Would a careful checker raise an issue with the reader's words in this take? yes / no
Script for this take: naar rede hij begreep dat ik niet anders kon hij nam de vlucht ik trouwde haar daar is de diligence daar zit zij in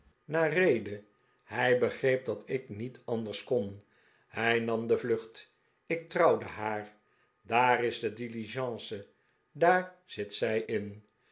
no